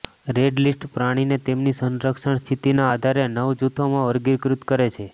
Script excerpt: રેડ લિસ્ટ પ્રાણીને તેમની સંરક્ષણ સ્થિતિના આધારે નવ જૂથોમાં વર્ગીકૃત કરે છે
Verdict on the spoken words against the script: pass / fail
pass